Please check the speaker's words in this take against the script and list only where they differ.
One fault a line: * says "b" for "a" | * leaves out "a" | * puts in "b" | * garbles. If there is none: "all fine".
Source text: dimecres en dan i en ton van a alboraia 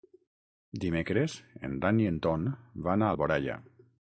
all fine